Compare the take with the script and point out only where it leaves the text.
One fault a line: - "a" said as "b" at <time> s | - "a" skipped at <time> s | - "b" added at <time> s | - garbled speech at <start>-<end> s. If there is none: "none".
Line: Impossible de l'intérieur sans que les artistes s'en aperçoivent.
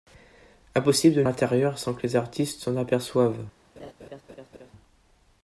none